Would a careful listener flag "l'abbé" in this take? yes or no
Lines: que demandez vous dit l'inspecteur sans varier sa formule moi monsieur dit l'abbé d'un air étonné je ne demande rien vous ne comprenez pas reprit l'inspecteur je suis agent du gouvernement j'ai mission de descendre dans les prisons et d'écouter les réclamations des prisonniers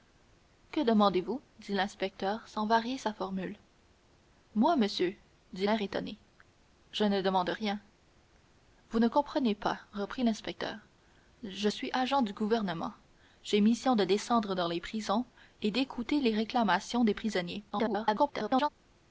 yes